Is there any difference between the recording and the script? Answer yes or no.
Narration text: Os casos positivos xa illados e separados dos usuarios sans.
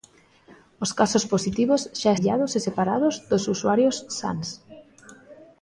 no